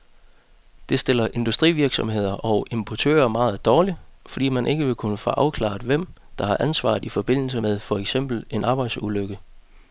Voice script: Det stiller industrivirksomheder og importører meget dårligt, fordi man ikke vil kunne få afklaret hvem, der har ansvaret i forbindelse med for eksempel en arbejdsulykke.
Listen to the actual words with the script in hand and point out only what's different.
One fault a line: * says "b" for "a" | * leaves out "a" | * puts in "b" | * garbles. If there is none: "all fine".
all fine